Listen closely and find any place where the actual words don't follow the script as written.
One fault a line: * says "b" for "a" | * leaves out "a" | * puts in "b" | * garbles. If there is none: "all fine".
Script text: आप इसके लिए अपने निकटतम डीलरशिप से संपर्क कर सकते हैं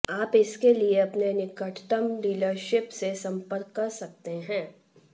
all fine